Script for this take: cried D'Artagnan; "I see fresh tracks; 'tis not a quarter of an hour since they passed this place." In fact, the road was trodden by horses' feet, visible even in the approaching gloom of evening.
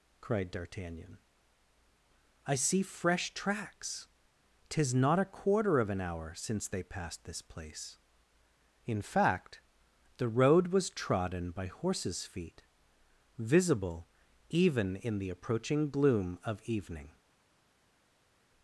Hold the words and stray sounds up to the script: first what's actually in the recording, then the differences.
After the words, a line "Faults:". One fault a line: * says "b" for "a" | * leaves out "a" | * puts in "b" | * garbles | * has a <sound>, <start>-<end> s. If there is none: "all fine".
cried D'Artagnan; "I see fresh tracks; 'tis not a quarter of an hour since they passed this place." In fact, the road was trodden by horses' feet, visible even in the approaching gloom of evening.
Faults:
all fine